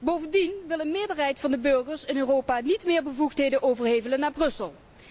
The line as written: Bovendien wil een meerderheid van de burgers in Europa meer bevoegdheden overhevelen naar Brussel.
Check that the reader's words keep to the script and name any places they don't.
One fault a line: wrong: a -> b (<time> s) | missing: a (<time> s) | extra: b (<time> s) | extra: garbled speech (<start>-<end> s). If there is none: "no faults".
extra: niet (2.6 s)